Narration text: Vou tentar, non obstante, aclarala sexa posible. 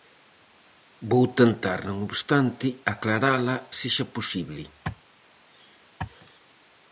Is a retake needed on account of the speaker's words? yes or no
no